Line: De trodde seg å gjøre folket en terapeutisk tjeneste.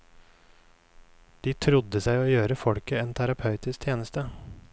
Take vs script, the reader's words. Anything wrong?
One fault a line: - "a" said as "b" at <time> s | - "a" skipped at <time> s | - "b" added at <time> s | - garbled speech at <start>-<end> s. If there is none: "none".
none